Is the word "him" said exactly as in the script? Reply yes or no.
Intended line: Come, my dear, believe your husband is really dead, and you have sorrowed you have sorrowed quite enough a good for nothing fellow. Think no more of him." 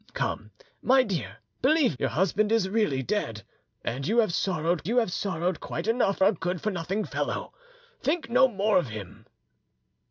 yes